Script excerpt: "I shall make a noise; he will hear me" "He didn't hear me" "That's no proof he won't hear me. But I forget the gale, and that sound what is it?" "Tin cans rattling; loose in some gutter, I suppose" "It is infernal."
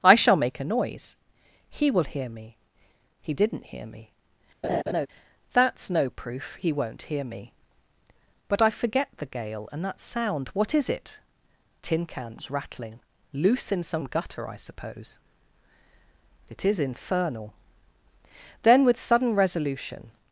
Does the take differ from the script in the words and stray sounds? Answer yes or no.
yes